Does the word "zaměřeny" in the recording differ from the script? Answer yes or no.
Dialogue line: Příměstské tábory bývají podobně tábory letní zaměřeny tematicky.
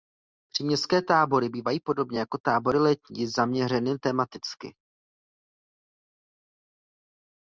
no